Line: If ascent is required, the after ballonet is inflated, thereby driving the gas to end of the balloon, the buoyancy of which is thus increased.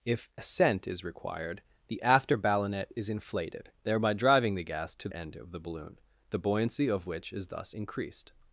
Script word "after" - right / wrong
right